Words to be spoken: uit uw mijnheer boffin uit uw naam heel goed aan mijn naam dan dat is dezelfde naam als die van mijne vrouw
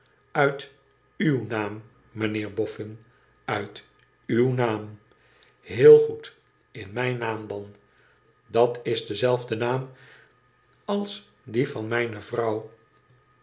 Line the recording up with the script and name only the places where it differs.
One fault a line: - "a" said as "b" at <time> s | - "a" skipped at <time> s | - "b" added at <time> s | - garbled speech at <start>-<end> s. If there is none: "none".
- "naam" added at 1.5 s
- "aan" said as "in" at 6.7 s